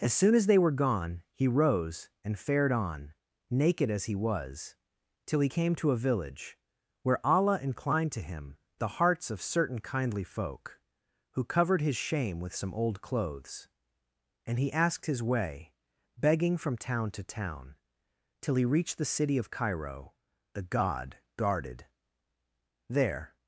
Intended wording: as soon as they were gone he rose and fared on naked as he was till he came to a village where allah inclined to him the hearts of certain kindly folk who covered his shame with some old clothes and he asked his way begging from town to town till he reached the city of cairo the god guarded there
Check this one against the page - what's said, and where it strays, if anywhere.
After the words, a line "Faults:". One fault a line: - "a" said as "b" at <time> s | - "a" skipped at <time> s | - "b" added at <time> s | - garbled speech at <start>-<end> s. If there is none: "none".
as soon as they were gone he rose and fared on naked as he was till he came to a village where allah inclined to him the hearts of certain kindly folk who covered his shame with some old clothes and he asked his way begging from town to town till he reached the city of cairo the god guarded there
Faults:
none